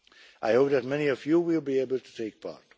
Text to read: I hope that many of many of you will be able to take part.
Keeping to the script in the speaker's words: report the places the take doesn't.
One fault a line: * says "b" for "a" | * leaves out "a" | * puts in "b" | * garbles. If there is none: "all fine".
* leaves out "many of"